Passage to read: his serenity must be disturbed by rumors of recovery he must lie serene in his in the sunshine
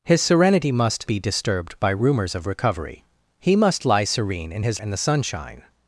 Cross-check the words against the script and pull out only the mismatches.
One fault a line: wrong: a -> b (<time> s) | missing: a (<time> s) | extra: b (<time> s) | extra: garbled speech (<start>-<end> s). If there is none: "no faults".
no faults